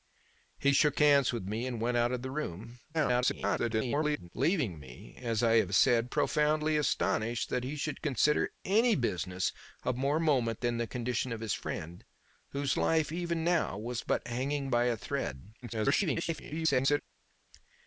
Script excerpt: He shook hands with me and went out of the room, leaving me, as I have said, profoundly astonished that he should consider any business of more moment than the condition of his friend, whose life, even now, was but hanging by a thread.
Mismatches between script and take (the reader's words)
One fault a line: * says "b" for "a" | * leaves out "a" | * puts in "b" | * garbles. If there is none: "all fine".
* garbles
* garbles